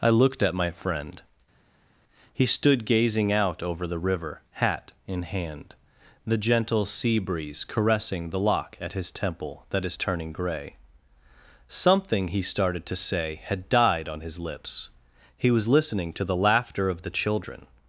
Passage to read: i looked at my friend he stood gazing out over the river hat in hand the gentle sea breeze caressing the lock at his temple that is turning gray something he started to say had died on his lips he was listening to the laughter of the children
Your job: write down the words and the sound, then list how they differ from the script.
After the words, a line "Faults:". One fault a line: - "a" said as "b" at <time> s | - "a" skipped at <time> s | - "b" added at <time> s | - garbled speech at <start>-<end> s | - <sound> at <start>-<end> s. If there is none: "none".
i looked at my friend he stood gazing out over the river hat in hand the gentle sea breeze caressing the lock at his temple that is turning gray something he started to say had died on his lips he was listening to the laughter of the children
Faults:
none